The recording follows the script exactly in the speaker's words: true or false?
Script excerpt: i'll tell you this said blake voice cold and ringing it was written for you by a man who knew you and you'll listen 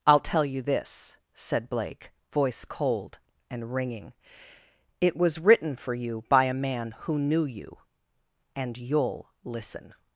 true